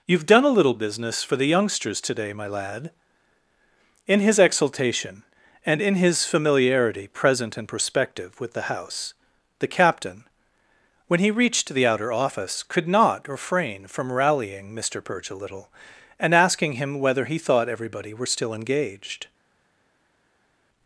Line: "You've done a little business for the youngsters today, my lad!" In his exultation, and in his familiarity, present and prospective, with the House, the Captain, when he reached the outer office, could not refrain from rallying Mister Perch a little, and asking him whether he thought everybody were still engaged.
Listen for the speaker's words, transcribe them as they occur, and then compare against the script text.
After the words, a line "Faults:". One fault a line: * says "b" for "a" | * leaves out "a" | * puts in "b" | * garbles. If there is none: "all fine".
"You've done a little business for the youngsters today, my lad!" In his exultation, and in his familiarity, present and prospective, with the House, the Captain, when he reached the outer office, could not refrain from rallying Mister Perch a little, and asking him whether he thought everybody were still engaged.
Faults:
all fine